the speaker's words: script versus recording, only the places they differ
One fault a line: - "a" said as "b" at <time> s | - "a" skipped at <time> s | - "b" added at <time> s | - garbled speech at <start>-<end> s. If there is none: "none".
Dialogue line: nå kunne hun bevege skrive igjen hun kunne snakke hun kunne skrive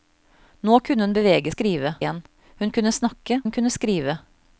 none